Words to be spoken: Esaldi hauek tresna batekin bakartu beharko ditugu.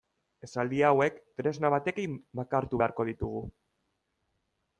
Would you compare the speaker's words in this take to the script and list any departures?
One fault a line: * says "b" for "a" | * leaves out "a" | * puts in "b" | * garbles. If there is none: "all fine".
all fine